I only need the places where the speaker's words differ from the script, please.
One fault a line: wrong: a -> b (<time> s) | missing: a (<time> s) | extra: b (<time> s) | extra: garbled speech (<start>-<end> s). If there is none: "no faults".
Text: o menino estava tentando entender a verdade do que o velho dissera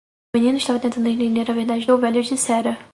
missing: do que (1.9 s)